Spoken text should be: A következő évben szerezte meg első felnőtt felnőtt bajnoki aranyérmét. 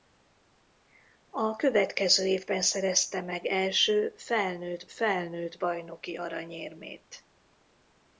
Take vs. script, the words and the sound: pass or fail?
pass